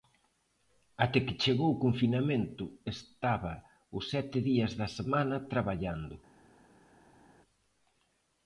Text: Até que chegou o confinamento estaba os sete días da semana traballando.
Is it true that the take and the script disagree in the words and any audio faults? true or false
false